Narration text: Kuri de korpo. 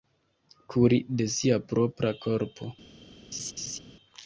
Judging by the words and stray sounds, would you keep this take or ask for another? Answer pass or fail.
fail